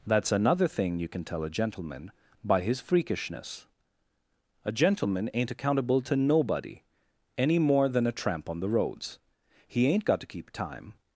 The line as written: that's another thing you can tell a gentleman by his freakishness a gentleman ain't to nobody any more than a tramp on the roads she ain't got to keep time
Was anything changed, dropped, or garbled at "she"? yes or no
yes